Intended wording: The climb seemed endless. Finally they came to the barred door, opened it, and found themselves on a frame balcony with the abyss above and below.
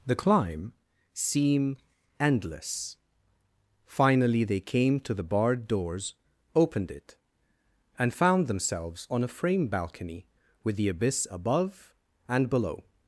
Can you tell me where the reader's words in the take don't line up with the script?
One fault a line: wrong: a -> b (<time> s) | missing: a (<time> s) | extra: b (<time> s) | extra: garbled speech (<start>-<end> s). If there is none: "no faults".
wrong: seemed -> seem (1.1 s)
wrong: door -> doors (5.7 s)